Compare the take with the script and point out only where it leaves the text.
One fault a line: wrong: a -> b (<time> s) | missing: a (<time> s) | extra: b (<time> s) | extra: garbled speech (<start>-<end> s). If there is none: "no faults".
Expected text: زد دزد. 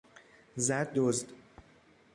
no faults